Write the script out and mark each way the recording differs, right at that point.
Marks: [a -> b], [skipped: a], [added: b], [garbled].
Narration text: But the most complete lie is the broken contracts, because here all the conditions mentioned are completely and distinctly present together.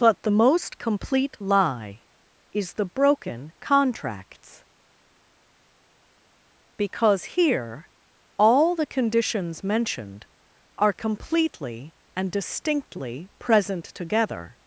But the most complete lie is the broken contracts, because here all the conditions mentioned are completely and distinctly present together.